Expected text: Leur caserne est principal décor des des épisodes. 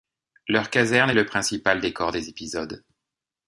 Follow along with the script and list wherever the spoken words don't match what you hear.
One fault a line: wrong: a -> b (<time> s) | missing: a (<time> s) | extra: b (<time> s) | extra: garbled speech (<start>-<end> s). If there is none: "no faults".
extra: le (1.1 s)
missing: des (2.3 s)